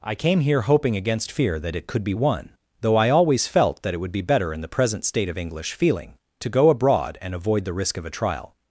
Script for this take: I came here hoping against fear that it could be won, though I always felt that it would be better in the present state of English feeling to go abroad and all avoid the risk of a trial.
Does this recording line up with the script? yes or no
no